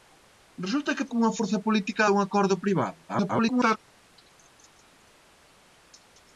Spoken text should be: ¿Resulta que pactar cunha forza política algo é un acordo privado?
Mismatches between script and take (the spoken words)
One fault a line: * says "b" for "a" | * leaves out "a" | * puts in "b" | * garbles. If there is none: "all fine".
* leaves out "pactar"
* leaves out "algo"
* garbles